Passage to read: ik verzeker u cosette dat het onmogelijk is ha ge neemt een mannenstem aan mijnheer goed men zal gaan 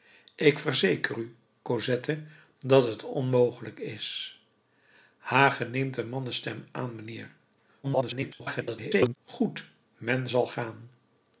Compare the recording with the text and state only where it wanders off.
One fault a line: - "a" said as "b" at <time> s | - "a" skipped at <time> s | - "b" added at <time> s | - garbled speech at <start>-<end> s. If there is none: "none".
- garbled speech at 7.8-9.2 s